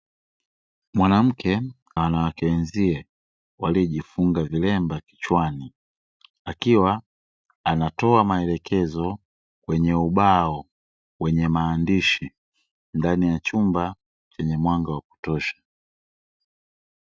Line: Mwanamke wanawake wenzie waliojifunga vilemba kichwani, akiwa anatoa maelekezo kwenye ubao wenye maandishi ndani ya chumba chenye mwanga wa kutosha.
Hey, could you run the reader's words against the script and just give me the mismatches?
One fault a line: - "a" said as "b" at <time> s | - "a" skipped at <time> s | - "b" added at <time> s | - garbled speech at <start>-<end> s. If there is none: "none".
none